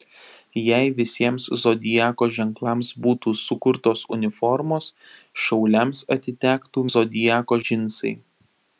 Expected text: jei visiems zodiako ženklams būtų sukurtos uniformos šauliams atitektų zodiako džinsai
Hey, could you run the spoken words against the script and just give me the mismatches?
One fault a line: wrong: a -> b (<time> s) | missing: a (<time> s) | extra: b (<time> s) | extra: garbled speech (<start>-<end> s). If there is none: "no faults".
no faults